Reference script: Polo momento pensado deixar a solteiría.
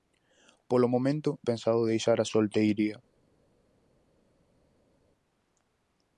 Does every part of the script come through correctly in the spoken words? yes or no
yes